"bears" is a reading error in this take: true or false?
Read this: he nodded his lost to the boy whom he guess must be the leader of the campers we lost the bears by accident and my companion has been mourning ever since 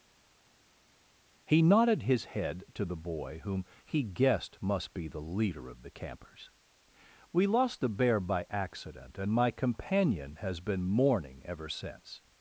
true